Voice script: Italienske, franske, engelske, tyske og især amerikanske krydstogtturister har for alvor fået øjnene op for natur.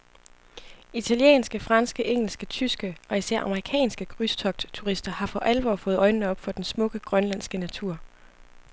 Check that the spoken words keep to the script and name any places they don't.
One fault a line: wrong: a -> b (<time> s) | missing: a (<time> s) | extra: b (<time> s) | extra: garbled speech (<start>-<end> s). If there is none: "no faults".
extra: den smukke grønlandske (6.5 s)